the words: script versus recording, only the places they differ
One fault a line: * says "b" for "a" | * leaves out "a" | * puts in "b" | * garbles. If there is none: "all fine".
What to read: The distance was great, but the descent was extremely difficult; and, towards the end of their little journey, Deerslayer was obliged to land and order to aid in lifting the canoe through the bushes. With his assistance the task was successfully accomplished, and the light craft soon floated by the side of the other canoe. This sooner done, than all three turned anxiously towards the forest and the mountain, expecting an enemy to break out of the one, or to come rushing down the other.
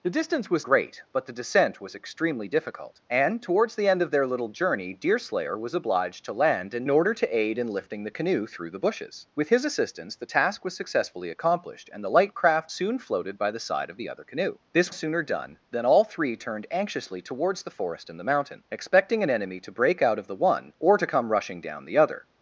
all fine